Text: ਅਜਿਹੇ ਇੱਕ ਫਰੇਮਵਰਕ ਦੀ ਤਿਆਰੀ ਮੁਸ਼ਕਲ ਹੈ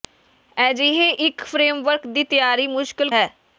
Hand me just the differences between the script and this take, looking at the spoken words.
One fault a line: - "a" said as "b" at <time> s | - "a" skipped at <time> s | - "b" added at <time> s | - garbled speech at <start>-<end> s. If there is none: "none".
none